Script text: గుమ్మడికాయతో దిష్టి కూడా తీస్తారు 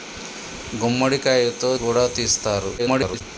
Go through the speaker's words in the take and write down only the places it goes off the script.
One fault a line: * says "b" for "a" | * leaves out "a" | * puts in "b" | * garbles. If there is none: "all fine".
* leaves out "దిష్టి"
* garbles